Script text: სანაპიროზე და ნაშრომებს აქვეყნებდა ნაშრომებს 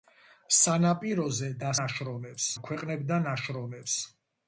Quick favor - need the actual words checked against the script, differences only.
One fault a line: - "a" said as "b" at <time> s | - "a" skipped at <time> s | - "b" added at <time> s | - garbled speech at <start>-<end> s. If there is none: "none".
none